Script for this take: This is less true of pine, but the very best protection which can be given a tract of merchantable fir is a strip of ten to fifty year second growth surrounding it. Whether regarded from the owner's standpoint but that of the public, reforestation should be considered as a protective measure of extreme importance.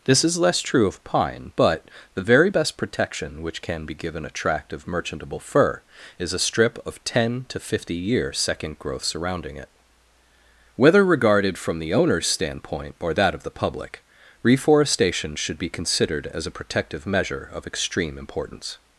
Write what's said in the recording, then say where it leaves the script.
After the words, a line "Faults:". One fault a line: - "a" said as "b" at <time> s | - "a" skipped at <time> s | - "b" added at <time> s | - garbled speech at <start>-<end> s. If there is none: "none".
This is less true of pine, but the very best protection which can be given a tract of merchantable fir is a strip of ten to fifty year second growth surrounding it. Whether regarded from the owner's standpoint or that of the public, reforestation should be considered as a protective measure of extreme importance.
Faults:
- "but" said as "or" at 13.0 s